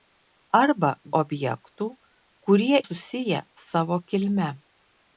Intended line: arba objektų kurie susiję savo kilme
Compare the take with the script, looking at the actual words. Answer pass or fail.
pass